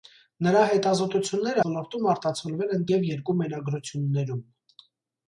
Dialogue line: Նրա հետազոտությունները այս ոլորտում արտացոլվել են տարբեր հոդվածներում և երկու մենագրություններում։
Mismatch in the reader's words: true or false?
true